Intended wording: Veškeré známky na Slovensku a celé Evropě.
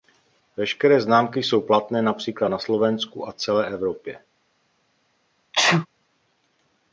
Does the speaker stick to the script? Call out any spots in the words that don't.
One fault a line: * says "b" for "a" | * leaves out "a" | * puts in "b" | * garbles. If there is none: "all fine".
* puts in "jsou platné například"